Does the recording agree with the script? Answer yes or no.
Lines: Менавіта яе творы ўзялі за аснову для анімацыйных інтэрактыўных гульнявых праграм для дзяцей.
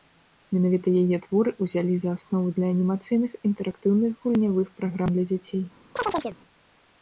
yes